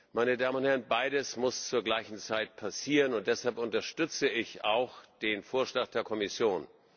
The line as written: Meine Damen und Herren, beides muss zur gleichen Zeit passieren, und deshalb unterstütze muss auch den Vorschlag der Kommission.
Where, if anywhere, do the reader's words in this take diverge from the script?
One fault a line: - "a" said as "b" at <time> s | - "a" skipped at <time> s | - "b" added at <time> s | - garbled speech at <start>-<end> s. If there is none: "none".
- "muss" said as "ich" at 4.3 s